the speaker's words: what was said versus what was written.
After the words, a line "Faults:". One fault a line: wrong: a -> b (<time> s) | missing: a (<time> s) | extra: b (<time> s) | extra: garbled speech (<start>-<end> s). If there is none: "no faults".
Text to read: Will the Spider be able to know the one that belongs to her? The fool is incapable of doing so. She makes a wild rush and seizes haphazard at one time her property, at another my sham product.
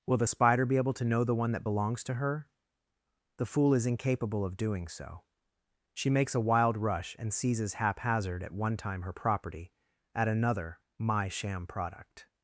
Will the Spider be able to know the one that belongs to her? The fool is incapable of doing so. She makes a wild rush and seizes haphazard at one time her property, at another my sham product.
Faults:
no faults